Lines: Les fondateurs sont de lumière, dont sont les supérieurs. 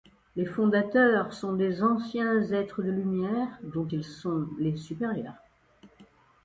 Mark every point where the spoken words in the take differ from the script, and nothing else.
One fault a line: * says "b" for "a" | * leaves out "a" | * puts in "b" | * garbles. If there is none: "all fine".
* puts in "des anciens êtres"
* puts in "ils"